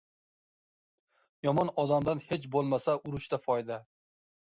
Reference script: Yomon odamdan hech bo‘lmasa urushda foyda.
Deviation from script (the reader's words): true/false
false